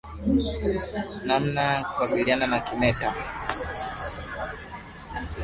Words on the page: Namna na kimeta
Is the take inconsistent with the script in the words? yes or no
yes